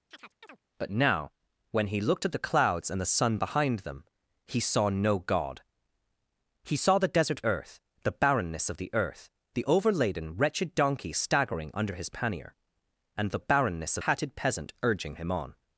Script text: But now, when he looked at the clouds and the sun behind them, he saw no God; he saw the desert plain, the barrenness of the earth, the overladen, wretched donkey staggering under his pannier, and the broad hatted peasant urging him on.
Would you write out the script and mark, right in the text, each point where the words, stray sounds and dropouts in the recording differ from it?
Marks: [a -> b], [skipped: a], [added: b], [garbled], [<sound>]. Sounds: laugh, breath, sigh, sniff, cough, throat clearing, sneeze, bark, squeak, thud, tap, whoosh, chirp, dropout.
[chirp] But now, when he looked at the clouds and the sun behind them, he saw no God; he saw the desert [plain, -> earth] the barrenness of the earth, the overladen, wretched donkey staggering under his pannier, and the [broad -> barrenness] hatted peasant urging him on.